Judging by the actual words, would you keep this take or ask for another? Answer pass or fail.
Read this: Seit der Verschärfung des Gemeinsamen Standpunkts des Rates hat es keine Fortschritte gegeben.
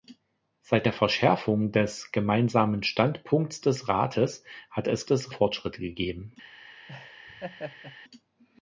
fail